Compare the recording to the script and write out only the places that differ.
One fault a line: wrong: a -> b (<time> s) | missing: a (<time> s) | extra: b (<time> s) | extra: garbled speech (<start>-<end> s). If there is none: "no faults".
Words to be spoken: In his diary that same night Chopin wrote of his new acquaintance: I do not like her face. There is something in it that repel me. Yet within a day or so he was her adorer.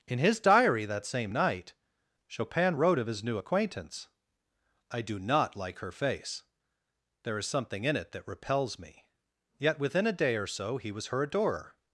wrong: repel -> repels (8.3 s)